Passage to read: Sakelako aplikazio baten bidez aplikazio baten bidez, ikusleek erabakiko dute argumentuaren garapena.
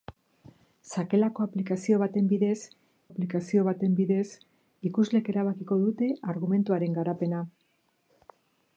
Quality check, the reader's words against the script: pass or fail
pass